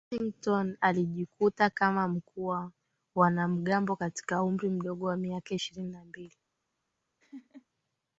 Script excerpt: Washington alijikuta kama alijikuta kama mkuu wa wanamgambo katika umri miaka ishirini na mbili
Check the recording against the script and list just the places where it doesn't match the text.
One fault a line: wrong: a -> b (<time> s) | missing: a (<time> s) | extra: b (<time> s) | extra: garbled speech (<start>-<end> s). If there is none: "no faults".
missing: alijikuta kama (2.1 s)
extra: mdogo wa (4.7 s)